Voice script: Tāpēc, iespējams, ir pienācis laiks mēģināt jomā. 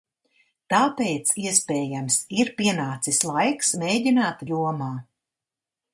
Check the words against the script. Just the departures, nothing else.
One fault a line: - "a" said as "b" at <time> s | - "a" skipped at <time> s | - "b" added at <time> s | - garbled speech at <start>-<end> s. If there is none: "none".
none